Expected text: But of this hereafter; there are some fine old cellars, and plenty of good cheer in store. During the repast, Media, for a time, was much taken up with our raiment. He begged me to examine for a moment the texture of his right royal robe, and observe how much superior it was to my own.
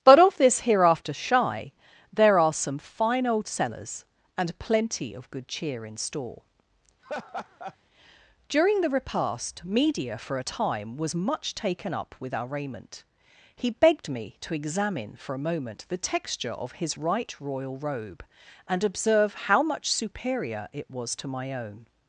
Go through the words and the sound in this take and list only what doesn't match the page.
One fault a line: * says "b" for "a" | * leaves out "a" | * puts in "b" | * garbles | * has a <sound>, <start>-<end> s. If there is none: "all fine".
* puts in "shy"
* has a laugh, 7.0-7.8 s